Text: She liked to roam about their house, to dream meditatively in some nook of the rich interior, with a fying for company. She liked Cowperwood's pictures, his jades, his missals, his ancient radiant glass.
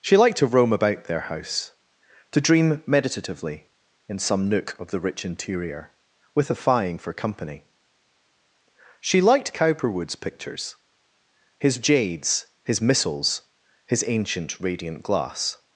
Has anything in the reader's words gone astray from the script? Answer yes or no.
no